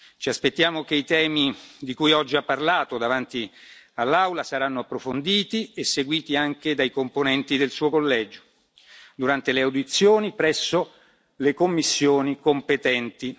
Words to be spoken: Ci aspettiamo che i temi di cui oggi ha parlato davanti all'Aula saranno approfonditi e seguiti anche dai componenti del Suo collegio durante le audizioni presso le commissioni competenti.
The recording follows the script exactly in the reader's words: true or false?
true